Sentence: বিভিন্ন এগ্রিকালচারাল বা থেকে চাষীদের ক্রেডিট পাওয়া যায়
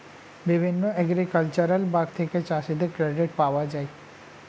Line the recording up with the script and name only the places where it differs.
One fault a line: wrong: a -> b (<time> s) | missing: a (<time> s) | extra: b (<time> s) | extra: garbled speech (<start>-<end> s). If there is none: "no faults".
no faults